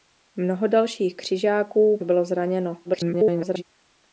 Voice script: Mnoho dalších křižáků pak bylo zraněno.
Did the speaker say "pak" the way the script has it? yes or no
no